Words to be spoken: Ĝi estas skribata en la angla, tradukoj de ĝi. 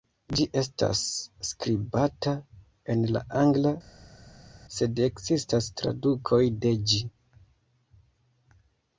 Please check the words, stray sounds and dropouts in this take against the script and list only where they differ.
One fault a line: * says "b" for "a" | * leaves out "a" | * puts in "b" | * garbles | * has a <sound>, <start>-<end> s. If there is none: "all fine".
* puts in "sed ekzistas"